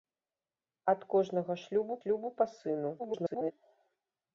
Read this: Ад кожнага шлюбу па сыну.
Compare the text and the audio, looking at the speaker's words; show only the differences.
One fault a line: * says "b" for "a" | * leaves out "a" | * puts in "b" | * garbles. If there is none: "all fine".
* puts in "шлюбу"
* garbles